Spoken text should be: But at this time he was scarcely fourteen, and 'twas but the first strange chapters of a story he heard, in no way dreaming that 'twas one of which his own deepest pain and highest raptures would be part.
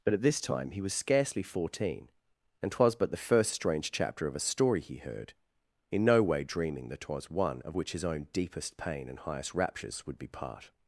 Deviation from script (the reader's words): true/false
true